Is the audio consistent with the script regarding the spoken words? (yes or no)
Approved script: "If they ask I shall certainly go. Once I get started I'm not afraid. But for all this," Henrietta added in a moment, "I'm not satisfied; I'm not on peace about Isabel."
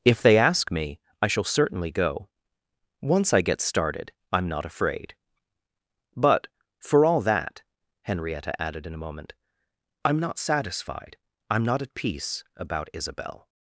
no